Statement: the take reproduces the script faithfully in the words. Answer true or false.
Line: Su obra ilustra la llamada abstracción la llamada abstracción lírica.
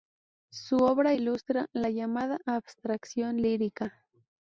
false